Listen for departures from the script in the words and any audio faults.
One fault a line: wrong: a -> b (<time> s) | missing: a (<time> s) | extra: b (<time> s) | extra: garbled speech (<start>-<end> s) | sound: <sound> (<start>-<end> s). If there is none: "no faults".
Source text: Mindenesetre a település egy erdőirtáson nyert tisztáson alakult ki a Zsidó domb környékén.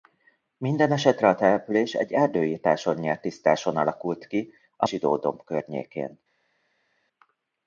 no faults